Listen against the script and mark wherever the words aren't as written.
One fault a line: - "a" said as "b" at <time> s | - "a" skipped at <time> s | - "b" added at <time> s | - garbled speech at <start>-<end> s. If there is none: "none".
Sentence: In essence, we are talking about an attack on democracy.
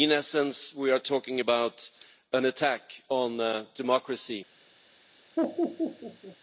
none